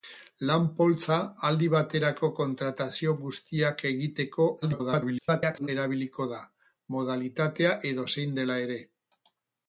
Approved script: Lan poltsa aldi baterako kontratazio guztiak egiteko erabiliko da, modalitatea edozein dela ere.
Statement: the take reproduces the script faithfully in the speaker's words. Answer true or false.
false